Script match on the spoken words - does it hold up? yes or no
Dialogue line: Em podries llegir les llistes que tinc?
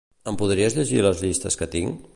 yes